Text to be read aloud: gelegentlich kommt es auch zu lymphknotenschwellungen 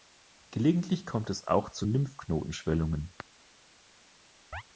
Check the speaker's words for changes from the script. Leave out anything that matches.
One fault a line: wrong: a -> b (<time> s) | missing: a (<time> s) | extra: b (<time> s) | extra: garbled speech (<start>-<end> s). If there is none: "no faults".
no faults